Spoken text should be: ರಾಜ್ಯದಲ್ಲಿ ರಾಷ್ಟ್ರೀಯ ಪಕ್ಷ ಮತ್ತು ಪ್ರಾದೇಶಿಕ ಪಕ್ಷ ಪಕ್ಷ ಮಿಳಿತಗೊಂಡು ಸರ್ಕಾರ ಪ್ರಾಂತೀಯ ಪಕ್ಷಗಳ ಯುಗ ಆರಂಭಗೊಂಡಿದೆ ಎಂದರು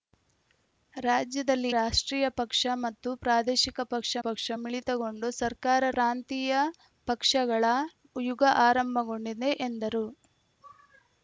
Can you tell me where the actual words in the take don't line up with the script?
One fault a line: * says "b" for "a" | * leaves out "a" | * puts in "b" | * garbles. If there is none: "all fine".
all fine